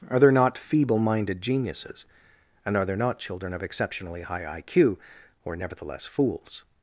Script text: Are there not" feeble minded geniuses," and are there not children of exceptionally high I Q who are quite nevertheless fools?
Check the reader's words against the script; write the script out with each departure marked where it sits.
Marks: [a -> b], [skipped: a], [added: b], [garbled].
Are there not" feeble minded geniuses," and are there not children of exceptionally high I Q who are [skipped: quite] nevertheless fools?